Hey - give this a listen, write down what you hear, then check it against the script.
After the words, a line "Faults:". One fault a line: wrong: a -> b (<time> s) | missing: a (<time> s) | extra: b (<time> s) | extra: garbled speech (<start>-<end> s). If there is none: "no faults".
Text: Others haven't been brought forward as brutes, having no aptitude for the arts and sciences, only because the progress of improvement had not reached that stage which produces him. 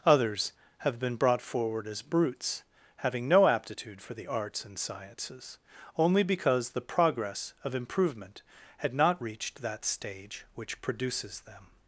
Others have been brought forward as brutes, having no aptitude for the arts and sciences, only because the progress of improvement had not reached that stage which produces them.
Faults:
wrong: haven't -> have (0.8 s)
wrong: him -> them (11.4 s)